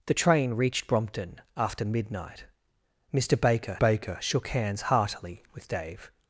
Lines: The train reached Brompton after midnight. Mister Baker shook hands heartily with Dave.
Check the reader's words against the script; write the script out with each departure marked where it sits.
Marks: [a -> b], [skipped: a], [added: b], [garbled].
The train reached Brompton after midnight. Mister Baker [added: Baker] shook hands heartily with Dave.